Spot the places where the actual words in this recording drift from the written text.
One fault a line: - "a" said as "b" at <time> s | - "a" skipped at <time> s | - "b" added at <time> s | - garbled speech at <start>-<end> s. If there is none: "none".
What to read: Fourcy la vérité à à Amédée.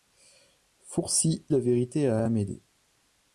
none